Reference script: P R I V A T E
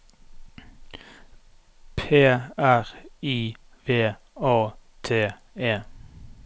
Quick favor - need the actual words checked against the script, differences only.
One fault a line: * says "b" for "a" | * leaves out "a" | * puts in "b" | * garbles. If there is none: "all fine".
all fine